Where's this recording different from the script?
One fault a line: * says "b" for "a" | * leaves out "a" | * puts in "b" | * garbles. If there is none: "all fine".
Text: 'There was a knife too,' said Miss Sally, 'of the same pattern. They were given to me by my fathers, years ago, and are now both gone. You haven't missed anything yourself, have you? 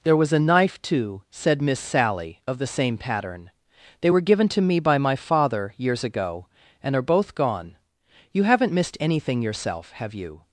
* says "father" for "fathers"
* leaves out "now"